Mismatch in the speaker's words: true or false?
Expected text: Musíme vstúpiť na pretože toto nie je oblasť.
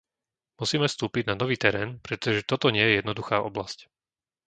true